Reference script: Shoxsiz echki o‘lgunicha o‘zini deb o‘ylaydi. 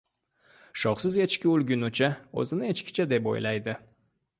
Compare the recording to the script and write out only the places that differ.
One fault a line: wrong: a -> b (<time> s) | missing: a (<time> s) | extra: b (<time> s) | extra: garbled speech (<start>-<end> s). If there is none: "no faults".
extra: echkicha (2.8 s)